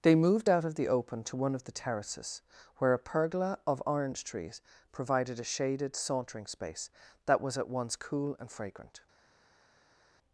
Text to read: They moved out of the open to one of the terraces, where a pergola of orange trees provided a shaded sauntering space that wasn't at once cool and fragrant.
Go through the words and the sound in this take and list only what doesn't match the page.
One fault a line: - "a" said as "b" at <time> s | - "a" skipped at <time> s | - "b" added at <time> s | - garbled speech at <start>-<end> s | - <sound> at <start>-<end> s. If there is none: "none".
- "wasn't" said as "was" at 7.4 s